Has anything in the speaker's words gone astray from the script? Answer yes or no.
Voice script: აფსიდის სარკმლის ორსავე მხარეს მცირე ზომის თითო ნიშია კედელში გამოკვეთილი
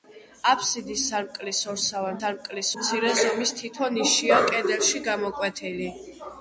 yes